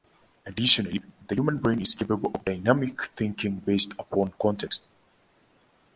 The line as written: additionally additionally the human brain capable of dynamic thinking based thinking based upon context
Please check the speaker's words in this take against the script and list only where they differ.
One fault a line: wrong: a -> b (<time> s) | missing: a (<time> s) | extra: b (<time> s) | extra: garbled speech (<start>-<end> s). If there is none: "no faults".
missing: additionally (1.0 s)
extra: is (1.8 s)
missing: thinking based (3.9 s)